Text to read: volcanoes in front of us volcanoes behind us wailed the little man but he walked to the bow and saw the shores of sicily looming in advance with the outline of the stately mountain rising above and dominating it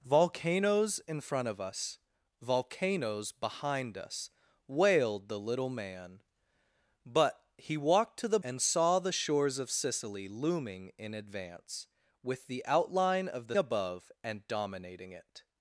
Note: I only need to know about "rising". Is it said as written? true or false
false